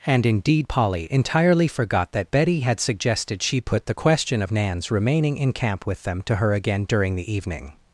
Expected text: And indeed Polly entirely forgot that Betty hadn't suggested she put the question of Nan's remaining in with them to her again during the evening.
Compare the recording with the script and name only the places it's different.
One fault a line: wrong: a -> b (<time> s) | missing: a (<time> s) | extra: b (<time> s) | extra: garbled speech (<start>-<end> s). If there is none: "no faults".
wrong: hadn't -> had (2.6 s)
extra: camp (5.5 s)